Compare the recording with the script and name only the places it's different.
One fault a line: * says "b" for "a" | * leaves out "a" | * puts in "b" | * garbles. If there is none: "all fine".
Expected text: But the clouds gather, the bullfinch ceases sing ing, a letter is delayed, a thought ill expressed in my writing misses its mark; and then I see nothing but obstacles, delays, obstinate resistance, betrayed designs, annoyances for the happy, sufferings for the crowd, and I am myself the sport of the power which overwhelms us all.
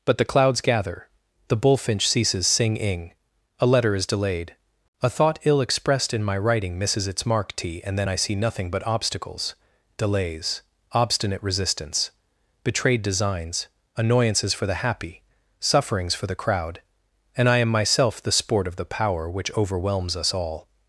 * puts in "t"